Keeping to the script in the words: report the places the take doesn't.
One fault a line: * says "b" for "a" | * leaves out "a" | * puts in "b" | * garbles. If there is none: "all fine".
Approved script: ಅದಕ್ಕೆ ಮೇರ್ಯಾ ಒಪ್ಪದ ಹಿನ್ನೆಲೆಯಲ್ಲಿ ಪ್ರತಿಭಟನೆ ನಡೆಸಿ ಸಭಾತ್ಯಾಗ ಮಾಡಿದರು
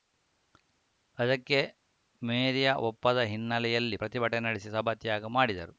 all fine